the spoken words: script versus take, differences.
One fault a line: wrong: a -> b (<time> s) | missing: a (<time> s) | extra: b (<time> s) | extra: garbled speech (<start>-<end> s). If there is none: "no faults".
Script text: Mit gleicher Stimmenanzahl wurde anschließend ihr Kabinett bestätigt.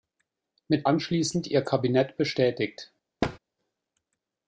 missing: gleicher Stimmenanzahl wurde (0.9 s)